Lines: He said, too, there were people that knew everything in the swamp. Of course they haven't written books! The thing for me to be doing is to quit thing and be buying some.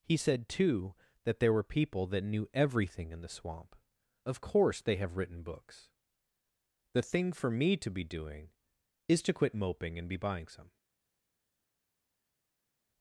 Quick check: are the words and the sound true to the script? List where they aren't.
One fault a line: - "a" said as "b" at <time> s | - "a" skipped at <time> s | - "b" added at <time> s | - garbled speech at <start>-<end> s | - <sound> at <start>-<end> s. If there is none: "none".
- "that" added at 1.2 s
- "haven't" said as "have" at 5.0 s
- "thing" said as "moping" at 9.5 s